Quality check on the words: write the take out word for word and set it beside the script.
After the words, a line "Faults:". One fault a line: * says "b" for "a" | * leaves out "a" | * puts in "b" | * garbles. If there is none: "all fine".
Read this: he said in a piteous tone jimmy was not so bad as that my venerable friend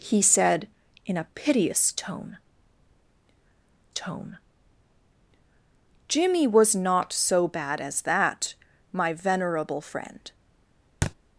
he said in a piteous tone tone jimmy was not so bad as that my venerable friend
Faults:
* puts in "tone"